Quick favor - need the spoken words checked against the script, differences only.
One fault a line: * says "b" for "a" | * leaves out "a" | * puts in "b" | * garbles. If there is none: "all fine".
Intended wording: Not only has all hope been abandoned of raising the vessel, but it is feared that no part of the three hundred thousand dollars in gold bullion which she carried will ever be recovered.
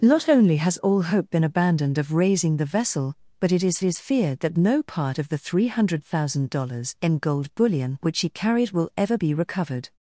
* puts in "is"